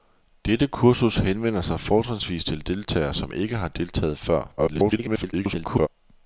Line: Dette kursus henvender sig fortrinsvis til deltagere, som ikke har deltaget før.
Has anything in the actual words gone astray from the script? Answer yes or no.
yes